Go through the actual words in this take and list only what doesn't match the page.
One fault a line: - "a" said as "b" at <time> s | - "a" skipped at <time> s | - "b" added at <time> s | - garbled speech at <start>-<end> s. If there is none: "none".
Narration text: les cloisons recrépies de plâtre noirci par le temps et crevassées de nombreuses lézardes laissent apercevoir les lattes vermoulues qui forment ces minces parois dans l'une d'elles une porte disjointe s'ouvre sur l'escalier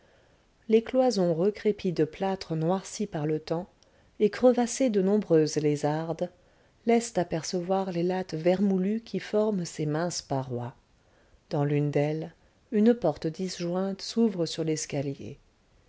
none